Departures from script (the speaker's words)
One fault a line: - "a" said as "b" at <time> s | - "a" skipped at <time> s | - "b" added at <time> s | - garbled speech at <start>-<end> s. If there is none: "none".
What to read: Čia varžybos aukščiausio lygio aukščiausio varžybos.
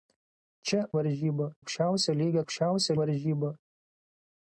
none